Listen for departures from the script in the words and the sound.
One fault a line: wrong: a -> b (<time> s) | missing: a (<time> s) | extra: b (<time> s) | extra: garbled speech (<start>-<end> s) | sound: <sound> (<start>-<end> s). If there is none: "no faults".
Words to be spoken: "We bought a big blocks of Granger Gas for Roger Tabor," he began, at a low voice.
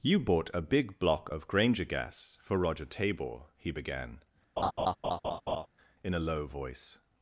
wrong: We -> You (0.0 s)
wrong: blocks -> block (1.0 s)
sound: laugh (4.6-5.7 s)
wrong: at -> in (6.0 s)